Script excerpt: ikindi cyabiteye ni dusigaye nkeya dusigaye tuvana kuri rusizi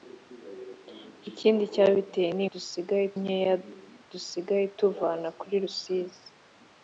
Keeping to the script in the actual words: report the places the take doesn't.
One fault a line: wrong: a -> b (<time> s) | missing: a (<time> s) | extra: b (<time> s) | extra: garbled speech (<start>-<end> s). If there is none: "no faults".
no faults